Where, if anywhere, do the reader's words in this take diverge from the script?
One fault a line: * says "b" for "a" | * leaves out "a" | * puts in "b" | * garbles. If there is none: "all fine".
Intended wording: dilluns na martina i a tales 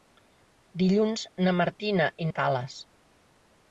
all fine